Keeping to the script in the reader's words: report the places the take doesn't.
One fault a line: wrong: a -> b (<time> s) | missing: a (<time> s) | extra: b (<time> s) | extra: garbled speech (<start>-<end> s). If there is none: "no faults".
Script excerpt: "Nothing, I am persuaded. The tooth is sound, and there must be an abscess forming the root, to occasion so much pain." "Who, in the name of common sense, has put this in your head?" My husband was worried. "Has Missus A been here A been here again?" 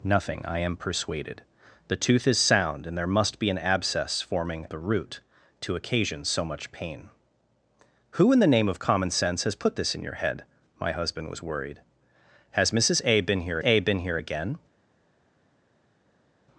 no faults